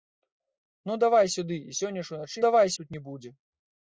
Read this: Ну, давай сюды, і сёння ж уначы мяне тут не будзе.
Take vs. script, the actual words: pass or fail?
fail